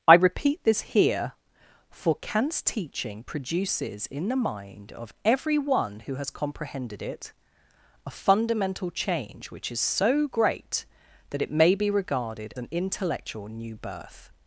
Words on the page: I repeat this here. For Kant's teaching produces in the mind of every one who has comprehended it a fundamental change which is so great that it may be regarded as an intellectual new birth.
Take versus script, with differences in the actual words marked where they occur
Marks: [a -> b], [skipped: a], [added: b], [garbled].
I repeat this here. For Kant's teaching produces in the mind of every one who has comprehended it a fundamental change which is so great that it may be regarded [skipped: as] an intellectual new birth.